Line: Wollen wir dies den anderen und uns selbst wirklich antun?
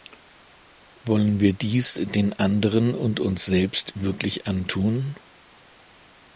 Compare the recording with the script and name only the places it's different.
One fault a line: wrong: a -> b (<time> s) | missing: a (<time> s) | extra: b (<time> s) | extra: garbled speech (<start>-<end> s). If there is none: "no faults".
no faults